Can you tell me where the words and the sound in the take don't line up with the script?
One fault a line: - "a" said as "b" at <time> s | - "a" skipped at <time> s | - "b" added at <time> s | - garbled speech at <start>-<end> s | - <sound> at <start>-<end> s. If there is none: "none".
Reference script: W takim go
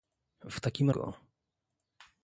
none